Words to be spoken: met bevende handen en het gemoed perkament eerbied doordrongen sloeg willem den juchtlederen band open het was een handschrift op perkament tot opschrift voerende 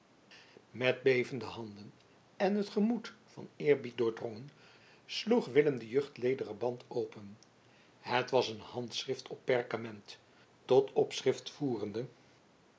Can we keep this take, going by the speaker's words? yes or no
no